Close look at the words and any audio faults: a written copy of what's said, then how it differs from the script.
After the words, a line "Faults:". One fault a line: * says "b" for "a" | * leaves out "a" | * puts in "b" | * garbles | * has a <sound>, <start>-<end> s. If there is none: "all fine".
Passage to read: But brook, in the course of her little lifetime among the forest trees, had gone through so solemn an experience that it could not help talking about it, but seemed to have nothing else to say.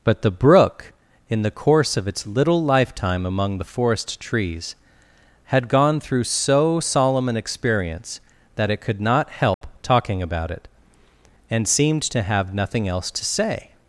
But the brook, in the course of its little lifetime among the forest trees, had gone through so solemn an experience that it could not help talking about it, and seemed to have nothing else to say.
Faults:
* puts in "the"
* says "its" for "her"
* has a dropout, 9.5-9.6 s
* says "and" for "but"